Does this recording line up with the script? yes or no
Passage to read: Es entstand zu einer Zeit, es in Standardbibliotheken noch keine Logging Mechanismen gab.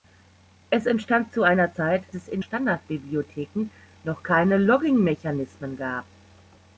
yes